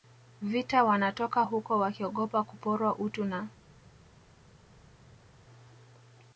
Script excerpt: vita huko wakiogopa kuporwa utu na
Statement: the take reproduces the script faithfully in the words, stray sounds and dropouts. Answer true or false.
false